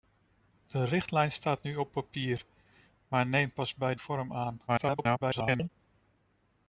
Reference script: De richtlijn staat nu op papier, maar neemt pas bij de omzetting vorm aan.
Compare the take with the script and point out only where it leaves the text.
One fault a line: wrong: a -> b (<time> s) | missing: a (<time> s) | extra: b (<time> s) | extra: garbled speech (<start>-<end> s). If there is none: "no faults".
missing: de omzetting (4.0 s)
extra: garbled speech (4.7-5.7 s)